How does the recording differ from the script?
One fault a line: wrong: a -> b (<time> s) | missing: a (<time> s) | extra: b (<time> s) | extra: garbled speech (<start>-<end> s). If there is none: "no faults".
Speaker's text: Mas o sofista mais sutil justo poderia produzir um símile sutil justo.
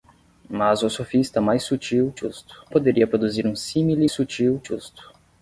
no faults